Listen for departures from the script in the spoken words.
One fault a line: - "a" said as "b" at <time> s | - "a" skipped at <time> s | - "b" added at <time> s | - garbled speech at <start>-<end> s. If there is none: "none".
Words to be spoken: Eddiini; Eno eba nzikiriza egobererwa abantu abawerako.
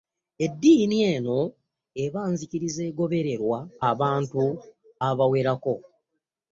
none